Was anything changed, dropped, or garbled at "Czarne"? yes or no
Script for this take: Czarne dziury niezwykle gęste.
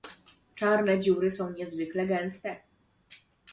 no